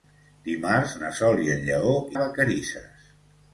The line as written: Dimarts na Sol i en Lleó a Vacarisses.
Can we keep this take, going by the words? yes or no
yes